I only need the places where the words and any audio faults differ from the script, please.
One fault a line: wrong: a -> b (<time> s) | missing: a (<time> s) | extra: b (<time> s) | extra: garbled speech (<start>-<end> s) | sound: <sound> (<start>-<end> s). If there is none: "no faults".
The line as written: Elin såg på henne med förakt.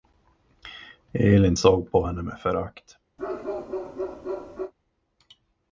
sound: bark (3.2-4.7 s)